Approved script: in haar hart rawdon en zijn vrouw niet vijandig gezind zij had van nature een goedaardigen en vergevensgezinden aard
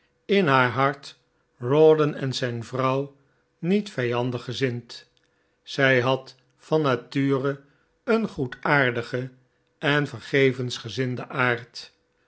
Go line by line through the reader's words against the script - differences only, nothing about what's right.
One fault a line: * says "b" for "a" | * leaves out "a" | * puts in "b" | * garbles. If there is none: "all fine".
all fine